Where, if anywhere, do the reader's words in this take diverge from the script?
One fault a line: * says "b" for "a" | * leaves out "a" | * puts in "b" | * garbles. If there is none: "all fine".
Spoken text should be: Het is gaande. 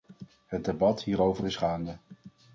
* puts in "debat hierover"